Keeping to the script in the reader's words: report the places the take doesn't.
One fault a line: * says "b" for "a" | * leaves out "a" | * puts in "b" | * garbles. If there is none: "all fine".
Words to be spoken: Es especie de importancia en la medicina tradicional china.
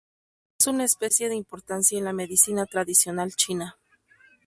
* puts in "una"